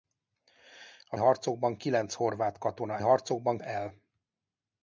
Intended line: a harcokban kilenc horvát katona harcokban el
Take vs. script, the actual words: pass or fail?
pass